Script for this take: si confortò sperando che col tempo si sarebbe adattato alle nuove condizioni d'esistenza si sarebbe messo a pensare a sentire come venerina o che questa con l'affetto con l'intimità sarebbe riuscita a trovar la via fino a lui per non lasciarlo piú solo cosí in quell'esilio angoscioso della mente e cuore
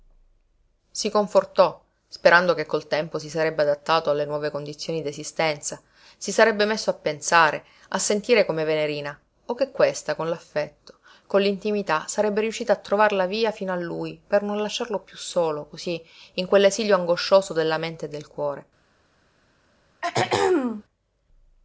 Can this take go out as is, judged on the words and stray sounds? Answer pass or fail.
fail